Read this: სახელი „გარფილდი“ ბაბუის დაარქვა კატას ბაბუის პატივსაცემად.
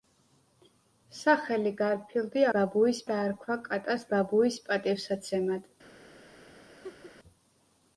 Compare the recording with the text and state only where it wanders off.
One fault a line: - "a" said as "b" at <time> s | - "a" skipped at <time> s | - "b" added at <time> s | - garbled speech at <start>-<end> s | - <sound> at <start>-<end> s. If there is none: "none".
- laugh at 6.8-7.1 s